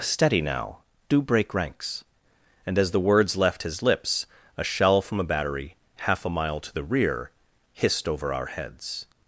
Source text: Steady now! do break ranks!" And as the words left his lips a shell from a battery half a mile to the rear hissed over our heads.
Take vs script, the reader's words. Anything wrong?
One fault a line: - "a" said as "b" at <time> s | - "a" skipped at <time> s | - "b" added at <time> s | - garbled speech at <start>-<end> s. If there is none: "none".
none